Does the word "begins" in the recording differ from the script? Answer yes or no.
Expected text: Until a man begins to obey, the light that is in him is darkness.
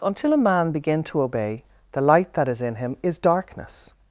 yes